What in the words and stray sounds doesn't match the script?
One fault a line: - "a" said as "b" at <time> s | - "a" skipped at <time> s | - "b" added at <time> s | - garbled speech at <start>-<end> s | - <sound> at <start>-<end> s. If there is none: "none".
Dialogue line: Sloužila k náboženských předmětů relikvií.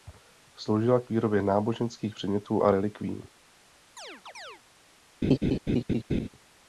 - "výrobě" added at 1.1 s
- "a" added at 2.6 s
- chirp at 4.0-4.6 s
- laugh at 5.2-6.3 s